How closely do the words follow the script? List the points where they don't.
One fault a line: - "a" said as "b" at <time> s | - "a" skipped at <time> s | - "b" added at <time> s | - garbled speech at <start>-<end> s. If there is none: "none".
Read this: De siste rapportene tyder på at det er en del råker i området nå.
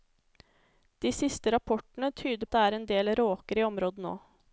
- "på" skipped at 2.5 s